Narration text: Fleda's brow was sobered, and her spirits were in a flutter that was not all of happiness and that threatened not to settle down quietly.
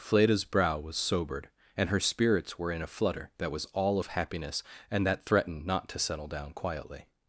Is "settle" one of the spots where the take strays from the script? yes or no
no